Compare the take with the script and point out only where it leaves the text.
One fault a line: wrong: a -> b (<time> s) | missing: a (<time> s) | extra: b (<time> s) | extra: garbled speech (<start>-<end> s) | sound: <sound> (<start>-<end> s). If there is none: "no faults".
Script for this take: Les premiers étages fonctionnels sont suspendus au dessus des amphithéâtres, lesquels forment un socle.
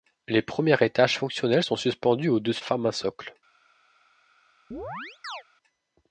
missing: des amphithéâtres lesquels (2.6 s)
sound: chirp (4.7-5.4 s)